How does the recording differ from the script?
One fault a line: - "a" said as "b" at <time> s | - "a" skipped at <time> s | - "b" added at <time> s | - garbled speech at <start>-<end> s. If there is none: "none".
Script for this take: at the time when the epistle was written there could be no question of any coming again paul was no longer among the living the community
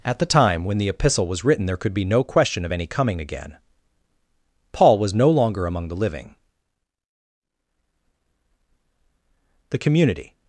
none